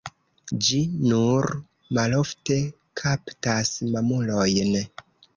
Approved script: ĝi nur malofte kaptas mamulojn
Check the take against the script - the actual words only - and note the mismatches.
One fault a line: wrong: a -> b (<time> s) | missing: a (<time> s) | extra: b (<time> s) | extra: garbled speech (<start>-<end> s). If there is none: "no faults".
no faults